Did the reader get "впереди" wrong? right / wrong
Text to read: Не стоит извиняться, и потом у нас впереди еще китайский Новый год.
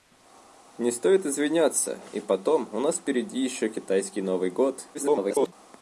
right